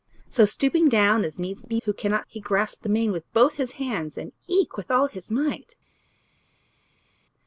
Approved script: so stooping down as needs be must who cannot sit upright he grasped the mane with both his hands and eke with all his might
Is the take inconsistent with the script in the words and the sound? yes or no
yes